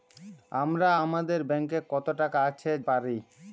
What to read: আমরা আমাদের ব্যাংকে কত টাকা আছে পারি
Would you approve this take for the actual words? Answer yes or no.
yes